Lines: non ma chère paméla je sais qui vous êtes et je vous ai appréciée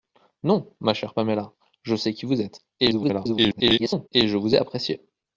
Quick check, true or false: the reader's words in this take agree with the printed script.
false